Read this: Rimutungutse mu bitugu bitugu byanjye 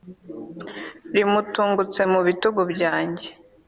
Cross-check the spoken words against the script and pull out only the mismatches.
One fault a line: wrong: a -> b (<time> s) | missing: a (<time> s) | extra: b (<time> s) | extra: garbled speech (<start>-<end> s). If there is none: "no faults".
missing: bitugu (2.6 s)